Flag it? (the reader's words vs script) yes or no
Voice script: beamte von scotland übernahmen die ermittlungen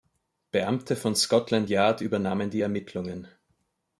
yes